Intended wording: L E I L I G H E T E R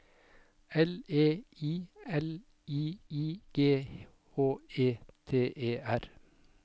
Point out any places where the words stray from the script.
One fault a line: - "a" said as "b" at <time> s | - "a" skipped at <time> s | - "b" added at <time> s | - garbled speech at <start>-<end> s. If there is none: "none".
- "I" added at 3.1 s